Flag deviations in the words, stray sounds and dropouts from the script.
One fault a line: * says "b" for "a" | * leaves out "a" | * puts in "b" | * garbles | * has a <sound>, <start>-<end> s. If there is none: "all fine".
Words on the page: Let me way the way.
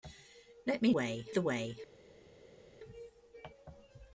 all fine